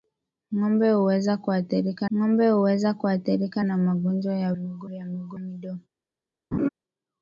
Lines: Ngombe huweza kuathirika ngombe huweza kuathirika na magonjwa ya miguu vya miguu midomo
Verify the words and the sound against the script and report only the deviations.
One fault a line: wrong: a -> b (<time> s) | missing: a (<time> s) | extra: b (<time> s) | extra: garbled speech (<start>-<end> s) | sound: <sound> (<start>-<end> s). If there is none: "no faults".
sound: laugh (6.5-6.7 s)